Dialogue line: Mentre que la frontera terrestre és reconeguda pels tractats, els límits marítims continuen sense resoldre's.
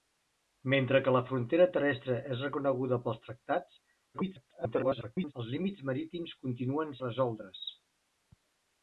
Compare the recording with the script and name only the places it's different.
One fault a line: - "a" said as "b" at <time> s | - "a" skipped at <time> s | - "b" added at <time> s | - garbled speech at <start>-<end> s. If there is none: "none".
- garbled speech at 4.1-5.3 s
- "sense" skipped at 6.9 s